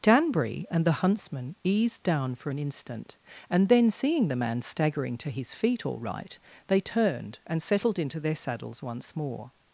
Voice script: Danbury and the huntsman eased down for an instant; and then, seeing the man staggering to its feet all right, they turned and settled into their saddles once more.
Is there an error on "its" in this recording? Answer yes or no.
yes